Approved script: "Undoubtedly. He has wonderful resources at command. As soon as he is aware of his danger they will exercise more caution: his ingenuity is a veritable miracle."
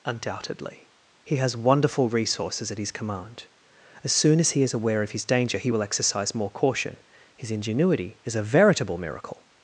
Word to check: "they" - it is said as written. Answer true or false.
false